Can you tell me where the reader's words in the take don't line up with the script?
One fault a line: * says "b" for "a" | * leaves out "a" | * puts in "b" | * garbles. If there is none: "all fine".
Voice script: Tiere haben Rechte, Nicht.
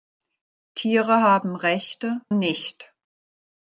all fine